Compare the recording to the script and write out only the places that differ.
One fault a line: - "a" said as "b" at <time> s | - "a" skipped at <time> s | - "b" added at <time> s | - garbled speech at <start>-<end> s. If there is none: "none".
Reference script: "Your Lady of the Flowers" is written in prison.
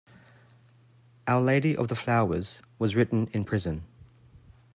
- "Your" said as "Our" at 1.3 s
- "is" said as "was" at 2.8 s